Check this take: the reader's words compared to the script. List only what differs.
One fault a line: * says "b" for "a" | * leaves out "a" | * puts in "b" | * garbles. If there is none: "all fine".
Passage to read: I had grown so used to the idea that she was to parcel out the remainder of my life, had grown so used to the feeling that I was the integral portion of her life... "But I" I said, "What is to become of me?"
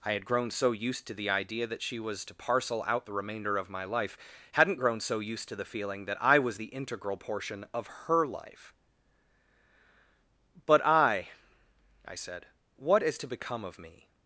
* says "hadn't" for "had"